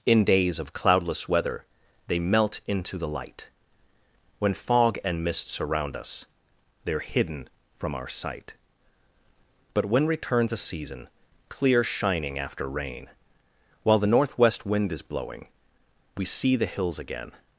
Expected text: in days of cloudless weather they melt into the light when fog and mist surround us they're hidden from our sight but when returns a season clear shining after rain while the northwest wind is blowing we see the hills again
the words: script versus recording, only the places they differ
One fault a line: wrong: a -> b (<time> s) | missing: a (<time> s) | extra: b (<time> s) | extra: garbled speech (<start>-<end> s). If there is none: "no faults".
no faults